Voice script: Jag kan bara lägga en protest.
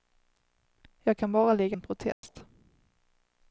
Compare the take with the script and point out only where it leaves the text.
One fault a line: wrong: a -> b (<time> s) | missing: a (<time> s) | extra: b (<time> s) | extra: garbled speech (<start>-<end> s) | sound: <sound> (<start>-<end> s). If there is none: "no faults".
sound: dropout (2.1-2.2 s)